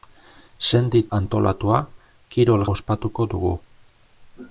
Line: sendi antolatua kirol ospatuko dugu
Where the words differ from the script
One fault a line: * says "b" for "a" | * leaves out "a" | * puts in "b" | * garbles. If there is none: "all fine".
all fine